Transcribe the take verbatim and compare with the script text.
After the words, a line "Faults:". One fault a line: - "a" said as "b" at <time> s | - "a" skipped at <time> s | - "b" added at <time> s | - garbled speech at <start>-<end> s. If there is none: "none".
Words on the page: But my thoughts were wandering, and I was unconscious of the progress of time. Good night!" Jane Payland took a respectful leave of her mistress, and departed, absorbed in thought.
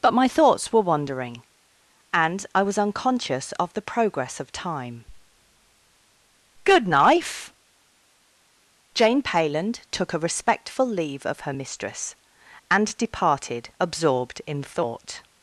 But my thoughts were wandering, and I was unconscious of the progress of time. Good knife!" Jane Payland took a respectful leave of her mistress, and departed, absorbed in thought.
Faults:
- "night" said as "knife" at 6.9 s